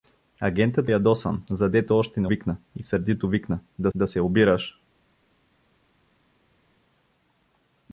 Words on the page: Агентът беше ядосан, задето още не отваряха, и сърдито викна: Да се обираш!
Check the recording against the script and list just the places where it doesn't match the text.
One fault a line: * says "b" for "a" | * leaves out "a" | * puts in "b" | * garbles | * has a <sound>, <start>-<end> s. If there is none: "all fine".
* leaves out "беше"
* says "викна" for "отваряха"
* puts in "Да"